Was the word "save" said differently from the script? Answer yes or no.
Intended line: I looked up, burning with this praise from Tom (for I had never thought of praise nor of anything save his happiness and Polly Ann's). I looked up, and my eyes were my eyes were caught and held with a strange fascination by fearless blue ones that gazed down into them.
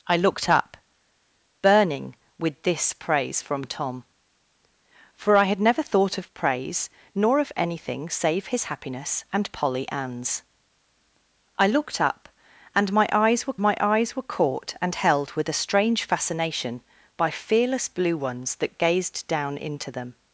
no